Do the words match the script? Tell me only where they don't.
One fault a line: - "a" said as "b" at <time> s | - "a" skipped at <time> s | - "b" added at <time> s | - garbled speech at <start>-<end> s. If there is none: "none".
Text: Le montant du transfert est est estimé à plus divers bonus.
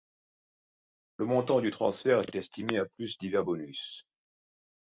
none